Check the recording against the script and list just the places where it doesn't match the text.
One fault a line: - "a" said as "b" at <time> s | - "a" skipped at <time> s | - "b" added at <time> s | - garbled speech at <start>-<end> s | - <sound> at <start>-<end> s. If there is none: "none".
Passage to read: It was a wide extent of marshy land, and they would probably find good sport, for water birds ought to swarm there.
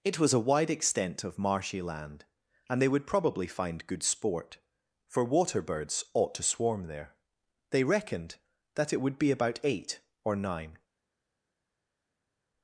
- "They reckoned that it would be about eight or nine" added at 7.7 s